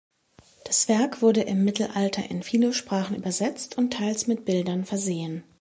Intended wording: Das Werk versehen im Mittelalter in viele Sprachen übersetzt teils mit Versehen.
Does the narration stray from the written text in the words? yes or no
yes